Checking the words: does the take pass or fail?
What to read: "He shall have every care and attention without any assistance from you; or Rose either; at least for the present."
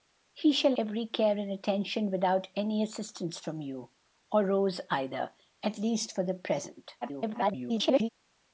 fail